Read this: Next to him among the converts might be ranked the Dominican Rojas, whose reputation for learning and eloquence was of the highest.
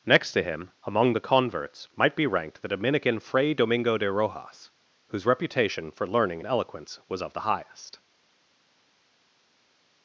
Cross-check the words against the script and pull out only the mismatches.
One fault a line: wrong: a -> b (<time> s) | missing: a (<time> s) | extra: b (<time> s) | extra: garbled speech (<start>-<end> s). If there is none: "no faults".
extra: Fray Domingo de (3.2 s)